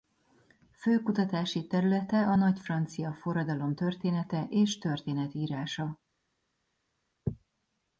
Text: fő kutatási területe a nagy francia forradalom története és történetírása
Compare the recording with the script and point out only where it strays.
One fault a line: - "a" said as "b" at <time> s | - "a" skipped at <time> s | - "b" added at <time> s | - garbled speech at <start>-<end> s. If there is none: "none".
none